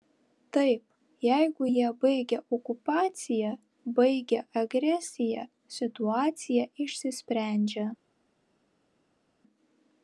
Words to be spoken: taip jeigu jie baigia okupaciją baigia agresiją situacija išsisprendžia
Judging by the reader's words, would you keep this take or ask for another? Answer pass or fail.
pass